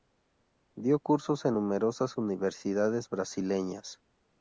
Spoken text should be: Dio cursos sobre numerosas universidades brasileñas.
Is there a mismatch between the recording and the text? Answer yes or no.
yes